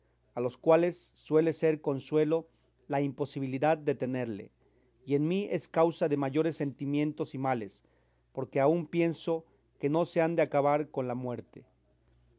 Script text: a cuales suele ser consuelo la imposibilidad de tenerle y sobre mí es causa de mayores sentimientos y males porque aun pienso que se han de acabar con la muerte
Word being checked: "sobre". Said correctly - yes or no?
no